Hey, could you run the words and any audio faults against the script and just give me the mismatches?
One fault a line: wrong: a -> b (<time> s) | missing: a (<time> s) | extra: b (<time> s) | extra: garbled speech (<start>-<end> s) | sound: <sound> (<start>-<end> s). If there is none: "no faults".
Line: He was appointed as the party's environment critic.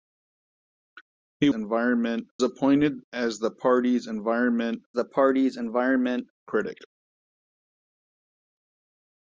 wrong: was -> environment (1.5 s)
extra: the party's environment (4.9 s)